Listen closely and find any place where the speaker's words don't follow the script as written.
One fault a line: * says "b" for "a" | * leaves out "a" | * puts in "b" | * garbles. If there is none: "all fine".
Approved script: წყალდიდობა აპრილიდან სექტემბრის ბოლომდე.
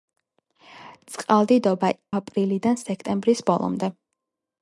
all fine